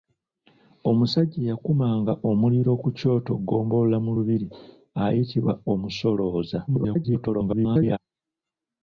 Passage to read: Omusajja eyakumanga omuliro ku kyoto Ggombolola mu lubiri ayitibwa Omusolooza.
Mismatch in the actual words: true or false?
true